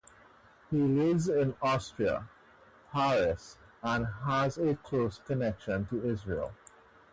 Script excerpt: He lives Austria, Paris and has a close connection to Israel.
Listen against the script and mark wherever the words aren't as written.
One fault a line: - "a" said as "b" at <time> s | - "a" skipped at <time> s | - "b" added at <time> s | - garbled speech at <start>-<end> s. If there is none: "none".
- "in" added at 1.3 s